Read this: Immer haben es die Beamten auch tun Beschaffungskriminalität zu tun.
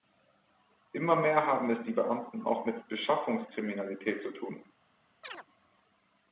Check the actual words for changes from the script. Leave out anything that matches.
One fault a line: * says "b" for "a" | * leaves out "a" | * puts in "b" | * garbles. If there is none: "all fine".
* puts in "mehr"
* says "mit" for "tun"